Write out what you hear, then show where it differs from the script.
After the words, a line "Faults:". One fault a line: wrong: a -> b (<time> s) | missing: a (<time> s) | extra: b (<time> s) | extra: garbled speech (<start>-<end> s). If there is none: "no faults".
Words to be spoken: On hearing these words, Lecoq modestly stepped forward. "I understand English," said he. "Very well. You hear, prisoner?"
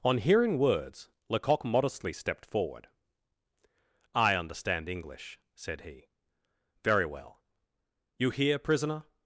On hearing words, Lecoq modestly stepped forward. "I understand English," said he. "Very well. You hear, prisoner?"
Faults:
missing: these (0.6 s)